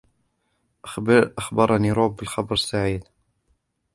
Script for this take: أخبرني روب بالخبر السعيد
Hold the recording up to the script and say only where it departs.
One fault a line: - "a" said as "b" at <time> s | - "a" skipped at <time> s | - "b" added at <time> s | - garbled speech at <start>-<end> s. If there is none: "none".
none